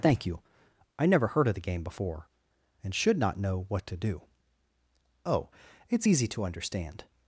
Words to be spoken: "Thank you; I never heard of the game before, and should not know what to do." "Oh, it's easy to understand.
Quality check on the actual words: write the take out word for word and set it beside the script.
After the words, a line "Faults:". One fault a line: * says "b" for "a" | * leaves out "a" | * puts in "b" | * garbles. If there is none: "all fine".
"Thank you; I never heard of the game before, and should not know what to do." "Oh, it's easy to understand.
Faults:
all fine